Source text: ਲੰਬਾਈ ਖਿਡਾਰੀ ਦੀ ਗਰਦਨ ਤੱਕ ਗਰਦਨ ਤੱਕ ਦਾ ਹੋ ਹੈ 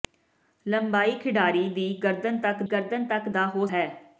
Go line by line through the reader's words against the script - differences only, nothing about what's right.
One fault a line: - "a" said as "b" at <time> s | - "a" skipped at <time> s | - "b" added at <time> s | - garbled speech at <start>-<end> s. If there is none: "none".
none